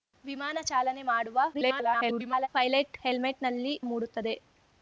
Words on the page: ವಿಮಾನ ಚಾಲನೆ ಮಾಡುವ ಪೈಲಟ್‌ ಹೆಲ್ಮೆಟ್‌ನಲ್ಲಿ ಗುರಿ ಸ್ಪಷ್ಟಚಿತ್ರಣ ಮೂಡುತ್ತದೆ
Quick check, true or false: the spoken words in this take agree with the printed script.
false